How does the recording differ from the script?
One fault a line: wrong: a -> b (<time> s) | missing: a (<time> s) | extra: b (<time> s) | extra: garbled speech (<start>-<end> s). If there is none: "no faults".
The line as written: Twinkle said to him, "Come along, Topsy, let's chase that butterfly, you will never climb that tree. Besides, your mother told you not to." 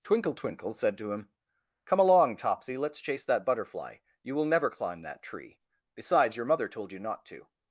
extra: twinkle (0.3 s)